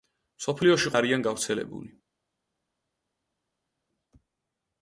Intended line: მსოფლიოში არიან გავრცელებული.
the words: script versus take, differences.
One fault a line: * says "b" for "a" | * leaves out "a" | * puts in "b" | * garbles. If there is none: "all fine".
all fine